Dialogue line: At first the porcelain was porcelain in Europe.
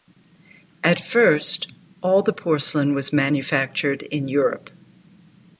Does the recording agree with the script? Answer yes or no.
no